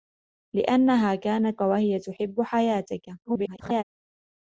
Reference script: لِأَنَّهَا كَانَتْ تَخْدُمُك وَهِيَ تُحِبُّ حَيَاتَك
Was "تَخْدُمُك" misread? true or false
true